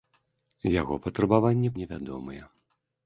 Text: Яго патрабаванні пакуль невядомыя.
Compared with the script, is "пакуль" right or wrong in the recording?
wrong